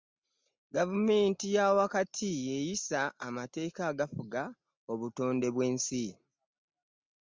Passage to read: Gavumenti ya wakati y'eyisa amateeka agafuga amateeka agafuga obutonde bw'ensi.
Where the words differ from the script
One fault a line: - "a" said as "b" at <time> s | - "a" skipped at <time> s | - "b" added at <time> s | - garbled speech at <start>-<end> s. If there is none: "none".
- "amateeka agafuga" skipped at 4.4 s